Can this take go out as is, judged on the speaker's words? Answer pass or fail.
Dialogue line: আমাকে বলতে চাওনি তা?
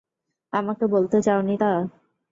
pass